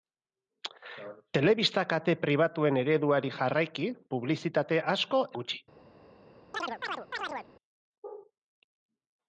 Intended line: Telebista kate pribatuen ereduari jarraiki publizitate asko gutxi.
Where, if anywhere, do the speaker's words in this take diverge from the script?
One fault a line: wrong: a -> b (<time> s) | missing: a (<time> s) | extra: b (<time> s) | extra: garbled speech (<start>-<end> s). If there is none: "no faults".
no faults